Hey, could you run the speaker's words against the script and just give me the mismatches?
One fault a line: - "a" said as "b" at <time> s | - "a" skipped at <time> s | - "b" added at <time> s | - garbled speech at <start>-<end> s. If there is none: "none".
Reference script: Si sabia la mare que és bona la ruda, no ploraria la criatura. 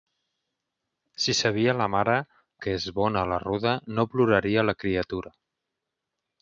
none